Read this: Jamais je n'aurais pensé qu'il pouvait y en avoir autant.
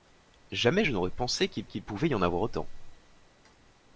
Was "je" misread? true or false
false